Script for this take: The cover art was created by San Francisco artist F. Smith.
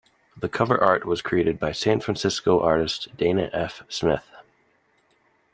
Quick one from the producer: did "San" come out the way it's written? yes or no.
yes